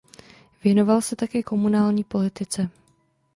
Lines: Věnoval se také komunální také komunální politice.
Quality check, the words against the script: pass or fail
fail